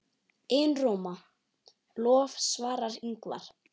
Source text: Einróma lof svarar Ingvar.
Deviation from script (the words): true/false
false